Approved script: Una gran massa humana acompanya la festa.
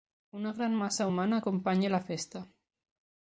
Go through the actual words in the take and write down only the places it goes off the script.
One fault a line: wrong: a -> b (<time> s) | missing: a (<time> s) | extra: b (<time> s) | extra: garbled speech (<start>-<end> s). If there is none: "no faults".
no faults